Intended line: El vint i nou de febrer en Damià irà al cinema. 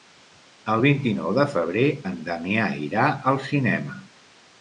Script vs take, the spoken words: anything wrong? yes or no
no